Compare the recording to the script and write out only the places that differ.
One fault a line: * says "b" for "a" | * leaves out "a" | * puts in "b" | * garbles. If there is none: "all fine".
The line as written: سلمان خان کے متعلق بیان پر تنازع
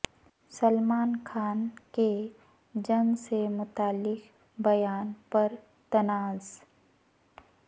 * puts in "جنگ سے"